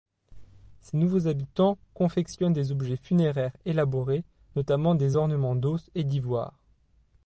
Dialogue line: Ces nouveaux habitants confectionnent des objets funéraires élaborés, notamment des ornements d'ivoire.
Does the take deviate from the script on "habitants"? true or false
false